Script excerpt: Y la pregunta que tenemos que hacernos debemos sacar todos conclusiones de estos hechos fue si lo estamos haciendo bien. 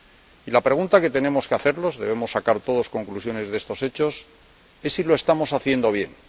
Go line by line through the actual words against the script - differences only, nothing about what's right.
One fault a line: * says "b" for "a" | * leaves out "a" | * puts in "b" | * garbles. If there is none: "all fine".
* says "es" for "fue"